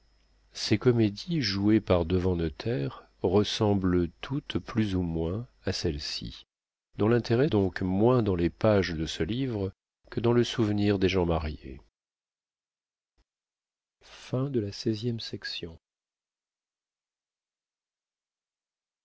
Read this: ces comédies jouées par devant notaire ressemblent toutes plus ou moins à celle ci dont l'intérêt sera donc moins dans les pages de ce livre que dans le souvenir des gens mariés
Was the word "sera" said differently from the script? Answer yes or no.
yes